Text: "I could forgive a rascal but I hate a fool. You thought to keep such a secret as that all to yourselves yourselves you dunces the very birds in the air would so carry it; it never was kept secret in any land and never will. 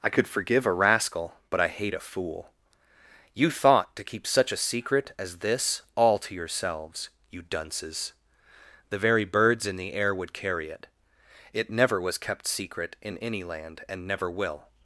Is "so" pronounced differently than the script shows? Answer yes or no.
yes